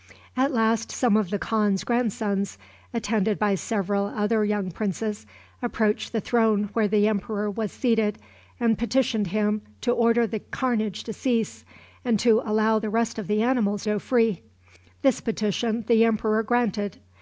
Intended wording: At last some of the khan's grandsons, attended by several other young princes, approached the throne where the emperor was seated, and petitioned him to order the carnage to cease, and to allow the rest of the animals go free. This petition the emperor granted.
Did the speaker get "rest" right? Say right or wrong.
right